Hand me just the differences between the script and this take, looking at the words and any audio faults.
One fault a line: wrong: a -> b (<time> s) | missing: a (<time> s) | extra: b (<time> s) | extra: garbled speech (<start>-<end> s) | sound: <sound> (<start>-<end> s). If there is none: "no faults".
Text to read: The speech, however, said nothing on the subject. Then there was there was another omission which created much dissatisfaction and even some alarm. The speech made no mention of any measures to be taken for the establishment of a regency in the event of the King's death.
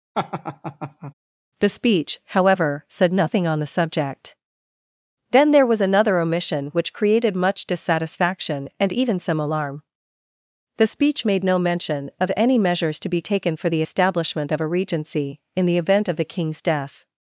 sound: laugh (0.1-1.1 s)
missing: there was (5.8 s)